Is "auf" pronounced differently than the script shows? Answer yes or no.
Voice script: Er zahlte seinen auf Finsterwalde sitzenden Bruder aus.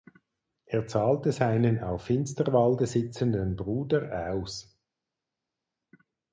no